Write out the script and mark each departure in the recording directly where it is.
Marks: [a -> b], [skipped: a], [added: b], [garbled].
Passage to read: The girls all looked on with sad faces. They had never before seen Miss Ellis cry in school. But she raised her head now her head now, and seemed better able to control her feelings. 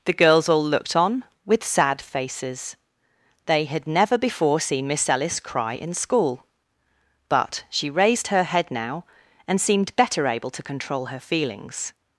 The girls all looked on with sad faces. They had never before seen Miss Ellis cry in school. But she raised her head now [skipped: her head now,] and seemed better able to control her feelings.